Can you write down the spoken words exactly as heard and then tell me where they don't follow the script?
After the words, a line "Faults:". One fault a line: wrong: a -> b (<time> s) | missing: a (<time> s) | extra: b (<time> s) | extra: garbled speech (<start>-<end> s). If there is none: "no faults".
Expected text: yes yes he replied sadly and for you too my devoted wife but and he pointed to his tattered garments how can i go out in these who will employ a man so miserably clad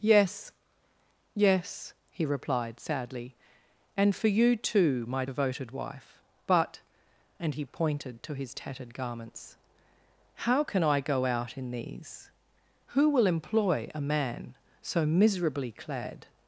yes yes he replied sadly and for you too my devoted wife but and he pointed to his tattered garments how can i go out in these who will employ a man so miserably clad
Faults:
no faults